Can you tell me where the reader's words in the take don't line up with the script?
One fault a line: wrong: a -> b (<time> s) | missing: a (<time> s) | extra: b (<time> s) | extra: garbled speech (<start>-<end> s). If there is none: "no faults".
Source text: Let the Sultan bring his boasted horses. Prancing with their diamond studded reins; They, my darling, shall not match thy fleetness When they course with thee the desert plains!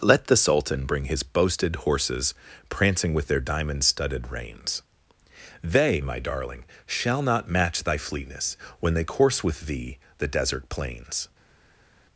no faults